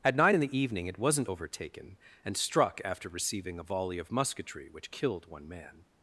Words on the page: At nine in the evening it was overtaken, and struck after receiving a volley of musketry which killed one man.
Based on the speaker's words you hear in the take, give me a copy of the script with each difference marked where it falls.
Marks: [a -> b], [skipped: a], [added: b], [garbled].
At nine in the evening it [was -> wasn't] overtaken, and struck after receiving a volley of musketry which killed one man.